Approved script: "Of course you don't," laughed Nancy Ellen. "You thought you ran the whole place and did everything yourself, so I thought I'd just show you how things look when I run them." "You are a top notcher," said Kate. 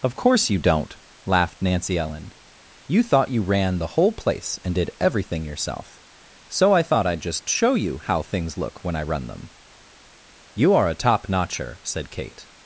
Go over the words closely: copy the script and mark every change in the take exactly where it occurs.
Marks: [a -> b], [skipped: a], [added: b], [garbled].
"Of course you don't," laughed Nancy Ellen. "You thought you ran the whole place and did everything yourself, so I thought I'd just show you how things look when I run them." "You are a top notcher," said Kate.